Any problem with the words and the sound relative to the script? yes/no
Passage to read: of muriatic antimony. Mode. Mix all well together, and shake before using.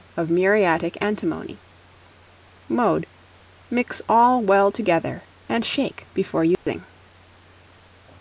yes